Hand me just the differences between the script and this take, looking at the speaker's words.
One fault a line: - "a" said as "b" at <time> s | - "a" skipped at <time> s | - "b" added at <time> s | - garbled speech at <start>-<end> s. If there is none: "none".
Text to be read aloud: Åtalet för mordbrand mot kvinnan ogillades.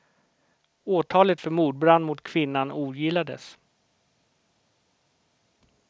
none